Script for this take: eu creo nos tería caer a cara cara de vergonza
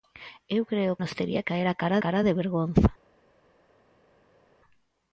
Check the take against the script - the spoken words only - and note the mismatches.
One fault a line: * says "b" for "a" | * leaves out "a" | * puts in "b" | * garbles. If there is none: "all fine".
all fine